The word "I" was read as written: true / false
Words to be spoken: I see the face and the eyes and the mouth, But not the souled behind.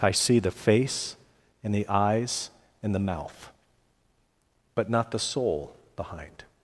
true